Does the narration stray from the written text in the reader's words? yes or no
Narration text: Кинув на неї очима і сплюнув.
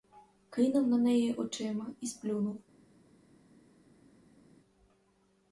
no